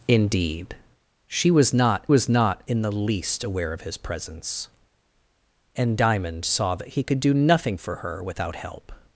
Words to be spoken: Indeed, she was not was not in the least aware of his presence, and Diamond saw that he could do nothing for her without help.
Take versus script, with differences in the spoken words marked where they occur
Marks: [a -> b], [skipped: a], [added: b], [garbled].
Indeed, she was not was not in the least aware of his presence, and Diamond saw that he could do nothing for her without help.